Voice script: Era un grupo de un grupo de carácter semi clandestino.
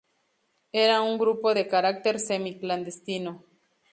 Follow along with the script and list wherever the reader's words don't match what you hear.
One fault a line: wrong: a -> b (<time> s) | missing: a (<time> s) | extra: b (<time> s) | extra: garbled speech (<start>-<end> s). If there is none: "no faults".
missing: un grupo de (1.7 s)